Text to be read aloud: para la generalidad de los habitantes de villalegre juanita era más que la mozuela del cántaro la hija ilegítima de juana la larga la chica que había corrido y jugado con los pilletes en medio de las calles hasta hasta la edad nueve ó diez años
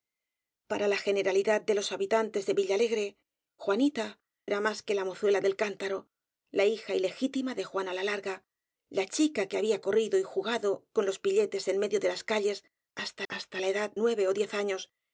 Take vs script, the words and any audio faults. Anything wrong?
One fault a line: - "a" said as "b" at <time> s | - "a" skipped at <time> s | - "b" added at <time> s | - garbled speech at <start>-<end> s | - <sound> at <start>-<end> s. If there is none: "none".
none